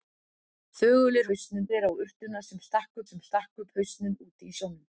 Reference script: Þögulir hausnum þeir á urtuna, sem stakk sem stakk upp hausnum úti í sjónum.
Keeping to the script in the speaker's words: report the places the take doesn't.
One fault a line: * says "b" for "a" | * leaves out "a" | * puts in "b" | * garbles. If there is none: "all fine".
all fine